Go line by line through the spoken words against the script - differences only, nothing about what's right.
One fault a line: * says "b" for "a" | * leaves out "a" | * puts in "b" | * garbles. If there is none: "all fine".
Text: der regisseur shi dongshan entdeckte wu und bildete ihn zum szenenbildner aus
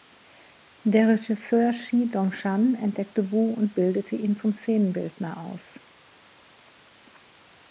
all fine